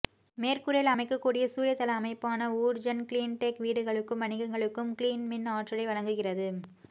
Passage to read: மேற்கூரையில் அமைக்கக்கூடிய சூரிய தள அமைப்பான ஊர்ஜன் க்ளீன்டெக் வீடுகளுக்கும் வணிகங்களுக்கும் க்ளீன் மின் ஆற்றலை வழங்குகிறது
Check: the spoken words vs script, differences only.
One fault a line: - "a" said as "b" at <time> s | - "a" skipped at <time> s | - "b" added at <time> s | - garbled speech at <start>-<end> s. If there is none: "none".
none